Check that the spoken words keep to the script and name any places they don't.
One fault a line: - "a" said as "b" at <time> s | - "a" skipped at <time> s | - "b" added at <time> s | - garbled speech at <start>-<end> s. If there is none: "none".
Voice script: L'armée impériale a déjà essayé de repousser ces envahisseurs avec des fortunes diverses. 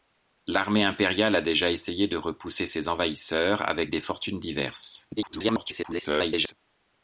- garbled speech at 5.2-6.5 s